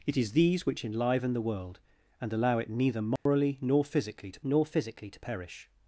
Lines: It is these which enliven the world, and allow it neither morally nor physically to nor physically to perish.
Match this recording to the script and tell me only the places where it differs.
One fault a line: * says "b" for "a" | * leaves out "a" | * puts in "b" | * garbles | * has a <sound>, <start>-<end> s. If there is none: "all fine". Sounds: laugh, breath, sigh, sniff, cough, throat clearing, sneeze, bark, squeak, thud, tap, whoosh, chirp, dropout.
* has a dropout, 3.2-3.3 s